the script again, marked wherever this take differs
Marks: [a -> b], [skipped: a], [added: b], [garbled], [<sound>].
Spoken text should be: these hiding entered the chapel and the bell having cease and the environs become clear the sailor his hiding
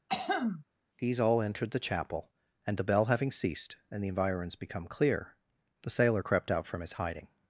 [throat clearing] these [hiding -> all] entered the chapel and the bell having [cease -> ceased] and the environs become clear the sailor [added: crept out from] his hiding